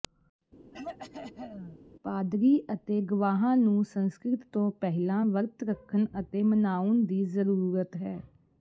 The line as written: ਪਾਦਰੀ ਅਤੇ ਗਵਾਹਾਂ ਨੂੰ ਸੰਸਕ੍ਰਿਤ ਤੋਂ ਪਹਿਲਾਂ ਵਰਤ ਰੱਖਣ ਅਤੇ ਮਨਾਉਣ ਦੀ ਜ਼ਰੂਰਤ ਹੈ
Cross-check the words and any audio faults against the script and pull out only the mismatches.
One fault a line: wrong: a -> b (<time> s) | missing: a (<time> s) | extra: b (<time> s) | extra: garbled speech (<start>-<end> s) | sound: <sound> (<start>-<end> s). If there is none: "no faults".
sound: throat clearing (0.7-1.8 s)